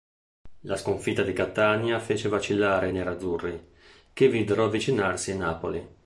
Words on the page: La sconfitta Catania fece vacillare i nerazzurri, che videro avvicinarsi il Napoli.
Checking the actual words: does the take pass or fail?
fail